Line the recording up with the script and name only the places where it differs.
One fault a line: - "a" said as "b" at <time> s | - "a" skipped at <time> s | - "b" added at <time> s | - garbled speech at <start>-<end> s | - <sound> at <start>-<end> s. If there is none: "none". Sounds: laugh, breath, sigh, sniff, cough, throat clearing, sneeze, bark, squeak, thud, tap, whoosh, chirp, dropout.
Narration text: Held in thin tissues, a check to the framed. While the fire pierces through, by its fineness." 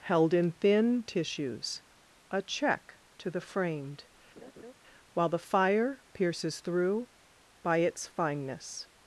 - laugh at 4.4-4.7 s